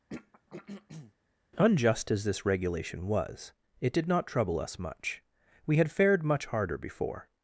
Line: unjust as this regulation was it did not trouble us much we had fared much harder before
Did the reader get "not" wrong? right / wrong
right